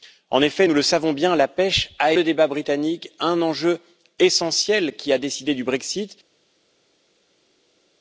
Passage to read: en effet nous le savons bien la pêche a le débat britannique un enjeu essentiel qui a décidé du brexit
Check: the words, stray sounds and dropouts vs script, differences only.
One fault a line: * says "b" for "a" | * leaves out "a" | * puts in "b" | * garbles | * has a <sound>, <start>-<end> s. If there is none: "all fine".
all fine